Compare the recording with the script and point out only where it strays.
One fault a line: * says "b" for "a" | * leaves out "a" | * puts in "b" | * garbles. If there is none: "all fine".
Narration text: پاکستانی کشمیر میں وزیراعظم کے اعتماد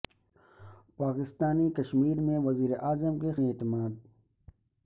all fine